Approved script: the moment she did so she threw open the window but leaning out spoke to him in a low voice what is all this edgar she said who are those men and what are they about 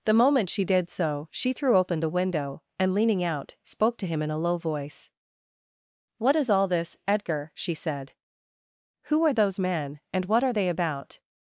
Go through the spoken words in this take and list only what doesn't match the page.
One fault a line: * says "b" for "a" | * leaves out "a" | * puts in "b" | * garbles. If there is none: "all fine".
* says "and" for "but"